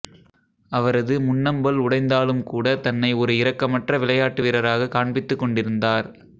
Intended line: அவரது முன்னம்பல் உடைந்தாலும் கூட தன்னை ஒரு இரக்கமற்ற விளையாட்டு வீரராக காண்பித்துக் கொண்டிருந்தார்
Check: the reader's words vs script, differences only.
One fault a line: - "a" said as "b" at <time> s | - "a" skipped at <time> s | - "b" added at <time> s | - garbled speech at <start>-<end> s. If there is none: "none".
none